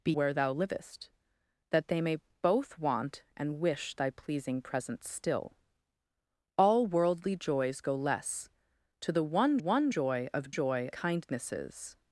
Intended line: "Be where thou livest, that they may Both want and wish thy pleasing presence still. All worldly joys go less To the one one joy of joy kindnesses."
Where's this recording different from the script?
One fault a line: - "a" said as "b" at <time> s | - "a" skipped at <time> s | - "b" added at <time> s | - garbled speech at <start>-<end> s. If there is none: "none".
none